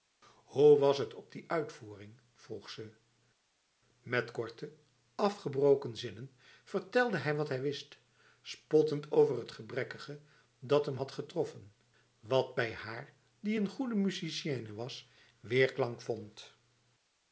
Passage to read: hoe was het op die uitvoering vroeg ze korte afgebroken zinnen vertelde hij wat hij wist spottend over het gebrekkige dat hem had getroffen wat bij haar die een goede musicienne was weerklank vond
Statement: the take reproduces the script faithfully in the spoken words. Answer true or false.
false